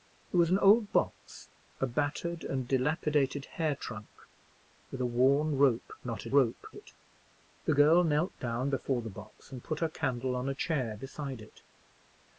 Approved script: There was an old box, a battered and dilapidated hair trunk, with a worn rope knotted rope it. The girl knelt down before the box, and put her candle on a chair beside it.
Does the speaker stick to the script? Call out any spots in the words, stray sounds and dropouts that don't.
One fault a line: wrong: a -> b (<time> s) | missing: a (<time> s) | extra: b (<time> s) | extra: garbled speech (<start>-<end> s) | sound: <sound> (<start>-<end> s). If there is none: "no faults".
no faults